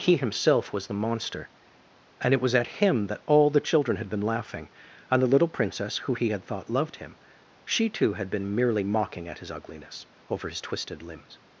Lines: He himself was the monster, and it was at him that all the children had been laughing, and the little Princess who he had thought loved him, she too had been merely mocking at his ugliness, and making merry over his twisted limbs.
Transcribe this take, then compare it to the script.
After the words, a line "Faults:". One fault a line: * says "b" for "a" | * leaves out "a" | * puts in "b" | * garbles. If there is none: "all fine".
He himself was the monster, and it was at him that all the children had been laughing, and the little Princess who he had thought loved him, she too had been merely mocking at his ugliness, over his twisted limbs.
Faults:
* leaves out "and making merry"